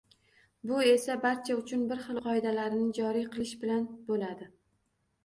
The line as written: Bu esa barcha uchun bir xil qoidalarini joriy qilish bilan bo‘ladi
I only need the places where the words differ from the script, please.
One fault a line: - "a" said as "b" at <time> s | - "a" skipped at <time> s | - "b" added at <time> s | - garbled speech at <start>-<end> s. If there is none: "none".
none